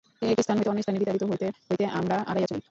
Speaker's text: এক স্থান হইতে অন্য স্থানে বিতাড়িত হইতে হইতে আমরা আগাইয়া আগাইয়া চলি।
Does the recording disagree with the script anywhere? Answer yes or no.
yes